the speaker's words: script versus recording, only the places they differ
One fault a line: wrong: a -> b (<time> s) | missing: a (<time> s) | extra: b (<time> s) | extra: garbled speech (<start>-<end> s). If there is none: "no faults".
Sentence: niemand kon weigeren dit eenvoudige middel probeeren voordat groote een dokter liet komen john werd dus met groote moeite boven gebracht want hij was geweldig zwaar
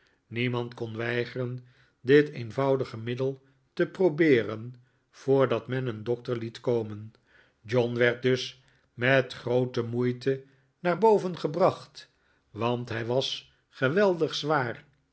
extra: te (3.7 s)
wrong: groote -> men (5.7 s)
extra: naar (10.8 s)